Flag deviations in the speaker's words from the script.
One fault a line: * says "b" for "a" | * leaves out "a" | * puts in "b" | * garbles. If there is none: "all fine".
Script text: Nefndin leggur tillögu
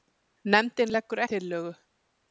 all fine